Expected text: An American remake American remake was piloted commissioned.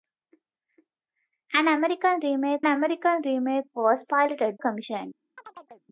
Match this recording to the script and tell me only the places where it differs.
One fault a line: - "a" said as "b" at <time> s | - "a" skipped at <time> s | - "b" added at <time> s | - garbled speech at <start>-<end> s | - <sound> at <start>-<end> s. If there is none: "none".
- chirp at 5.4-5.9 s